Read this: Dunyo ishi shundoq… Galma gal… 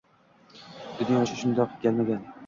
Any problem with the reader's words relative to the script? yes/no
no